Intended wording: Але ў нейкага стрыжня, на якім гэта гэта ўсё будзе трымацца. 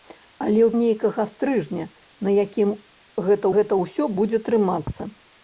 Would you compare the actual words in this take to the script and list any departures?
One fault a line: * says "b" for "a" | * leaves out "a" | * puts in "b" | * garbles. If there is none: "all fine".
all fine